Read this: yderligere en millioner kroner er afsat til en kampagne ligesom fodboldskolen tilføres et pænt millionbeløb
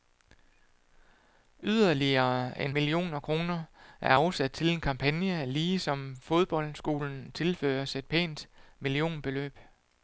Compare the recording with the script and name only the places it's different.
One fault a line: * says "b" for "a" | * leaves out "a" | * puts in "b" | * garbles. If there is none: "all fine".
all fine